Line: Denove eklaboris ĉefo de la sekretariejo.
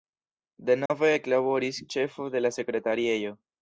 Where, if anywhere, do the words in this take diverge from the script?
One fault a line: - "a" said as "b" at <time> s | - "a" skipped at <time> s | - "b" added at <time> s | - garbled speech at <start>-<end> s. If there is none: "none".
none